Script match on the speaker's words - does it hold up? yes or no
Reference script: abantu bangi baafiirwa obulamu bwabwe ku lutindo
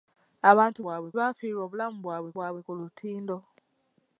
no